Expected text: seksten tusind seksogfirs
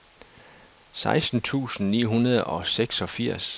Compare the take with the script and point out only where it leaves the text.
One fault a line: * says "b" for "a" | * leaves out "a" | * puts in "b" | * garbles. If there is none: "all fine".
* puts in "ni hundrede og"